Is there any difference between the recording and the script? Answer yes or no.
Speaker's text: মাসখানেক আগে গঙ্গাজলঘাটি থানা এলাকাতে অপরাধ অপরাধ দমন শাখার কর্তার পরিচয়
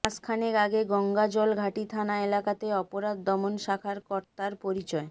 yes